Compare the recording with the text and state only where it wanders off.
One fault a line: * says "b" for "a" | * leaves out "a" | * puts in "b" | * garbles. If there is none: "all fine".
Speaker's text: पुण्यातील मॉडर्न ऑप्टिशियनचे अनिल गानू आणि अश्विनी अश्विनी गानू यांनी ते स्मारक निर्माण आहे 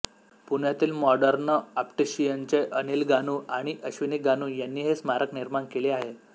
* leaves out "अश्विनी"
* says "हे" for "ते"
* puts in "केले"